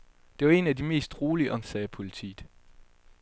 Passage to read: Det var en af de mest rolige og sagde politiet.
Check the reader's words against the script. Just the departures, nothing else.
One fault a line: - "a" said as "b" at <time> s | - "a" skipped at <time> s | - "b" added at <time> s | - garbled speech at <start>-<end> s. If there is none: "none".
none